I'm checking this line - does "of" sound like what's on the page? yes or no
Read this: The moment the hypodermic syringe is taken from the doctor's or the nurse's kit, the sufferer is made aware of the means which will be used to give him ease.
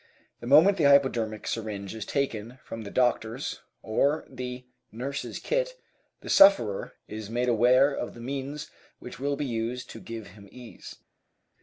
yes